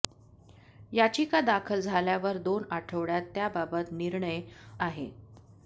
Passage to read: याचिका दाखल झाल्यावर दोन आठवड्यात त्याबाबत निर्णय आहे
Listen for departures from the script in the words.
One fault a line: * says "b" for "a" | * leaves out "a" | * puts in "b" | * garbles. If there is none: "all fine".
all fine